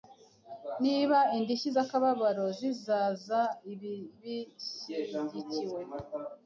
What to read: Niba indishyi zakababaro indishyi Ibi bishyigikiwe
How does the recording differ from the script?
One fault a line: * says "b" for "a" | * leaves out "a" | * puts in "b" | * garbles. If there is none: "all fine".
* says "zizaza" for "indishyi"